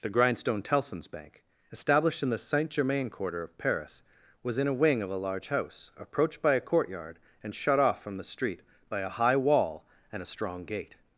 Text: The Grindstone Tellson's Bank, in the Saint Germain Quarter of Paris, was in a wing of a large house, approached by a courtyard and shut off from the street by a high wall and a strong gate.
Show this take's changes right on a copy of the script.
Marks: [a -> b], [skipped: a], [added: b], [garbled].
The Grindstone Tellson's Bank, [added: established] in the Saint Germain Quarter of Paris, was in a wing of a large house, approached by a courtyard and shut off from the street by a high wall and a strong gate.